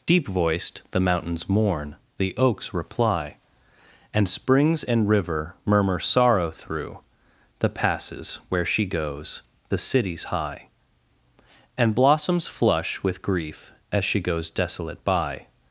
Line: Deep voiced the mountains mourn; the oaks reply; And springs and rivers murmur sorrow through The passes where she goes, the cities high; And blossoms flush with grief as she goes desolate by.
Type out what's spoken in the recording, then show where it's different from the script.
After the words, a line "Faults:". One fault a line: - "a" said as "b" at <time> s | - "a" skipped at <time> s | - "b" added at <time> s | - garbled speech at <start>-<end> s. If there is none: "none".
Deep voiced the mountains mourn; the oaks reply; And springs and river murmur sorrow through The passes where she goes, the cities high; And blossoms flush with grief as she goes desolate by.
Faults:
- "rivers" said as "river" at 5.1 s